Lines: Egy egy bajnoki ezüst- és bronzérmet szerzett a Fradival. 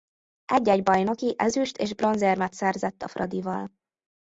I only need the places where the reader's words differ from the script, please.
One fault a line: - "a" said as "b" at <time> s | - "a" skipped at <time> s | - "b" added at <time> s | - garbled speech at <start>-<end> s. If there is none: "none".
none